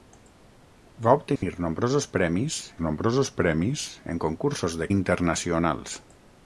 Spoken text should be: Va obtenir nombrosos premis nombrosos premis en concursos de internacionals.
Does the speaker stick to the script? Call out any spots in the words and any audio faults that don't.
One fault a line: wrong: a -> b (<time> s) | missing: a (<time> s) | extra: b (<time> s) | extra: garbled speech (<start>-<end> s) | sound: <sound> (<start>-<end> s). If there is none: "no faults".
sound: dropout (1.4-1.4 s)